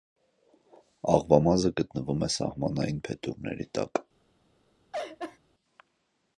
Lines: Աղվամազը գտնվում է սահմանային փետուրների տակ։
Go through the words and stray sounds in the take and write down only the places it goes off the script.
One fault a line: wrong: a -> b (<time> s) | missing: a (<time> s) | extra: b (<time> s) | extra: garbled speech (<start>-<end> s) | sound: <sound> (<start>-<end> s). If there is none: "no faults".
sound: laugh (4.9-5.4 s)